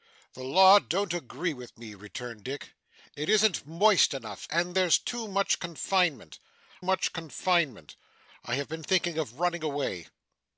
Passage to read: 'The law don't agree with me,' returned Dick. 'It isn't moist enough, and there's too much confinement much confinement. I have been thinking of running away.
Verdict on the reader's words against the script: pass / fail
pass